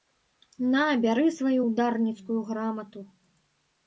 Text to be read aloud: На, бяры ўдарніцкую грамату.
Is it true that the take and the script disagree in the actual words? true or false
true